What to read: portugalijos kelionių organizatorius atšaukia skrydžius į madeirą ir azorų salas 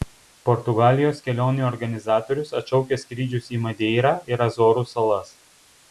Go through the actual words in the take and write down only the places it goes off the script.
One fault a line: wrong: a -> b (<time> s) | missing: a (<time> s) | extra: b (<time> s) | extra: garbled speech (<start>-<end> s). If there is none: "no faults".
no faults